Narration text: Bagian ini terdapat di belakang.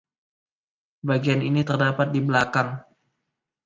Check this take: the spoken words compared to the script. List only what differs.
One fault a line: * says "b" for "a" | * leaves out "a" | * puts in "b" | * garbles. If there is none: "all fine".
all fine